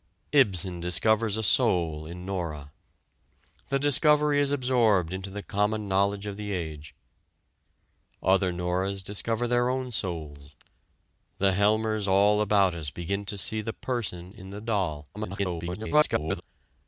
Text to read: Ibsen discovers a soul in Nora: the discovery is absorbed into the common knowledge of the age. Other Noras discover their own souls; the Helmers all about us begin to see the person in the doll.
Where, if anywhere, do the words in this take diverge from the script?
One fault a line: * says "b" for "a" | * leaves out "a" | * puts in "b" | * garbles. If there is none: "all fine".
* garbles